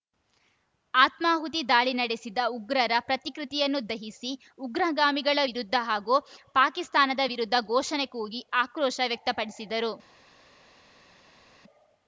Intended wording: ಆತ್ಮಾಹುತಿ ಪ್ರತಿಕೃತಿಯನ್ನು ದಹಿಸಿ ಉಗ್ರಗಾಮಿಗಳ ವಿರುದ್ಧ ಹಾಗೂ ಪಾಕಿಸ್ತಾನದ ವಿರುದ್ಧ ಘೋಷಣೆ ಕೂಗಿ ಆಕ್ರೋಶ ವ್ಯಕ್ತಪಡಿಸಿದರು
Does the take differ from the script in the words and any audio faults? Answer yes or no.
yes